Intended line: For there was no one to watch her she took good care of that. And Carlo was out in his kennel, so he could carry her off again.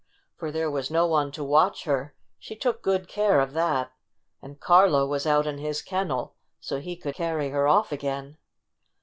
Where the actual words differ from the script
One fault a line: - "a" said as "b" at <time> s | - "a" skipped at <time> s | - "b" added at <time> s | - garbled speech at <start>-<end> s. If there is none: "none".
none